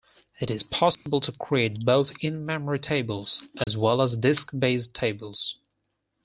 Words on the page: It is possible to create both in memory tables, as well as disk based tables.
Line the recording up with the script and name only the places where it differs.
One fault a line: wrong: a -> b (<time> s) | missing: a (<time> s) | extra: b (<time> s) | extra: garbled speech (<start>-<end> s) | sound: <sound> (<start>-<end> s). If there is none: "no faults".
sound: dropout (0.9-1.1 s)
sound: dropout (3.6-3.7 s)